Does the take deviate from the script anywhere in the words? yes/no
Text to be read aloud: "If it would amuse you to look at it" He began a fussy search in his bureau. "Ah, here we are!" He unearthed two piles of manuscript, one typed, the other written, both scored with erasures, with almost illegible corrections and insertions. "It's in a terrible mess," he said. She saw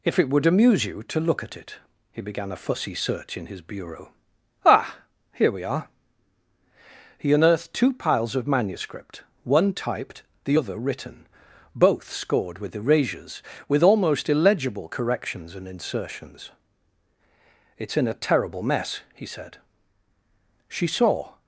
no